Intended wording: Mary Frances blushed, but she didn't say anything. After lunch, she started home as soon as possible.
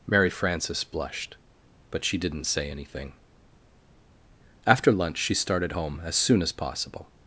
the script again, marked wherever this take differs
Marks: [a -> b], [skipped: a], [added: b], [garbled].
Mary Frances blushed, but she didn't say anything. After lunch, she started home as soon as possible.